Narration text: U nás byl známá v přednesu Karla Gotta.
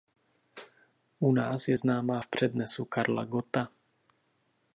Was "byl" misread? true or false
true